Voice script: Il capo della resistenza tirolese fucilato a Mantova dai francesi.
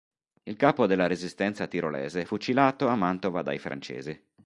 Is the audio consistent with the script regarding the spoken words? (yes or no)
yes